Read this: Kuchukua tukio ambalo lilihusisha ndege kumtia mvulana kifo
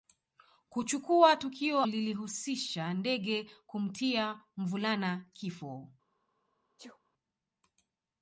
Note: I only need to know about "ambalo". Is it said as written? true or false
false